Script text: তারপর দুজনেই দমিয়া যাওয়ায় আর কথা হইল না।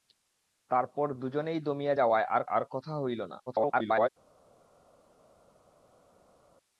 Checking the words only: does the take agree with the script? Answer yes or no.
no